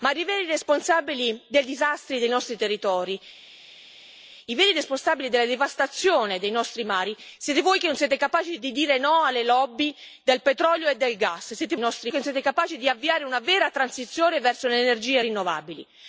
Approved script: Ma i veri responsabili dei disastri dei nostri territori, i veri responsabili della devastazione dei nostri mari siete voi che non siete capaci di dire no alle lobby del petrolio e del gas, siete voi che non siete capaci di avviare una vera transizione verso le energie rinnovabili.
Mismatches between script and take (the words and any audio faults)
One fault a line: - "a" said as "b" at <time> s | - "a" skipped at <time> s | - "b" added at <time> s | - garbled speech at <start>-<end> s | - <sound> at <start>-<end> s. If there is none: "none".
- "voi" said as "nostri" at 11.8 s